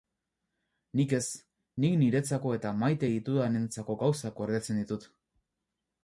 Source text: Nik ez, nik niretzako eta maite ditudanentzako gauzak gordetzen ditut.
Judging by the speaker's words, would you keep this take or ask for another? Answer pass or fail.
pass